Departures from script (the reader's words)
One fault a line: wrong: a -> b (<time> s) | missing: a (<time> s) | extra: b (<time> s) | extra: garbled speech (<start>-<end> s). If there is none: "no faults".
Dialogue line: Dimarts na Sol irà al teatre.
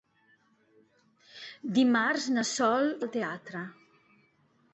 missing: irà (2.9 s)